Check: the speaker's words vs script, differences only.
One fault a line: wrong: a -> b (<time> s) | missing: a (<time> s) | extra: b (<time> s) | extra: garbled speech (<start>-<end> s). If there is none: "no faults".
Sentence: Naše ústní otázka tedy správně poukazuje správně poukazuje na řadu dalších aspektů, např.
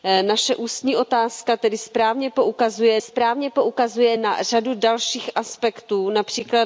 no faults